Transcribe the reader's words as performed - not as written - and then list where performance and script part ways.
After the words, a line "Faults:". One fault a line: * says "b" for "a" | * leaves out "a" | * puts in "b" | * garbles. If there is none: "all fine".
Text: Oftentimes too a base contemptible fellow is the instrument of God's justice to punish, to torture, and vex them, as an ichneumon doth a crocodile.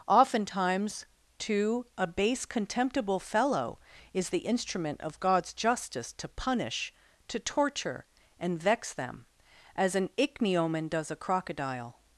Oftentimes too a base contemptible fellow is the instrument of God's justice to punish, to torture, and vex them, as an ichneumon does a crocodile.
Faults:
* says "does" for "doth"